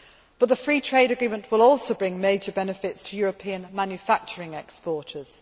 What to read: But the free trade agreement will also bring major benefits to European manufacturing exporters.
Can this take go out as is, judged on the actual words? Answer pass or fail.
pass